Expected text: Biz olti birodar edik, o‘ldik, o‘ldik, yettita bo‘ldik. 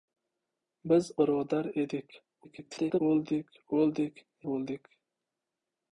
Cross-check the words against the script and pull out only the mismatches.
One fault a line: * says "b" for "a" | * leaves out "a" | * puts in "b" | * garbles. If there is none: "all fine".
* leaves out "olti"
* garbles
* leaves out "yettita"